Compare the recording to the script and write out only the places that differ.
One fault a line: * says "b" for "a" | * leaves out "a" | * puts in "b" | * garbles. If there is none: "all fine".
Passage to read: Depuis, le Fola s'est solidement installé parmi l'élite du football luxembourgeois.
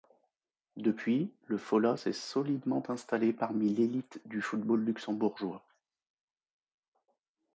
all fine